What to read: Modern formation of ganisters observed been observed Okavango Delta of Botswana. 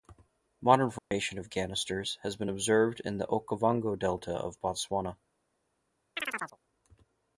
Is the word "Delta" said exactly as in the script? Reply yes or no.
yes